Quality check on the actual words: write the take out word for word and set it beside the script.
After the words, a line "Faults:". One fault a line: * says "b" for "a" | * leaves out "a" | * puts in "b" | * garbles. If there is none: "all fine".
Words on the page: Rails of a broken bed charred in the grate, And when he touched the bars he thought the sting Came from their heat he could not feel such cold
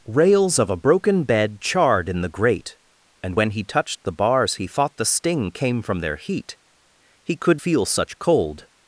Rails of a broken bed charred in the grate, And when he touched the bars he thought the sting Came from their heat he could feel such cold
Faults:
* leaves out "not"